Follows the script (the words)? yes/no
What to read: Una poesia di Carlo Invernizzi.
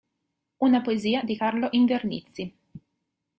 yes